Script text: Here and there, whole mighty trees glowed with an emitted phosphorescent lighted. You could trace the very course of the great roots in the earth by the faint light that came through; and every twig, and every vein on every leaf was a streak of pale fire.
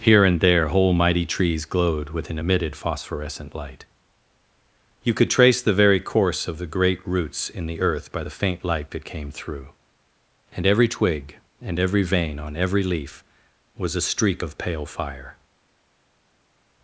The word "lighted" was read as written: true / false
false